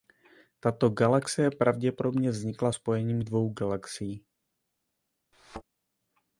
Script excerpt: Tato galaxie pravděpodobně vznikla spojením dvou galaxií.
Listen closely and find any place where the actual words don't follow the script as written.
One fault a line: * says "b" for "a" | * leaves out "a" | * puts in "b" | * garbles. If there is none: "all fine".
all fine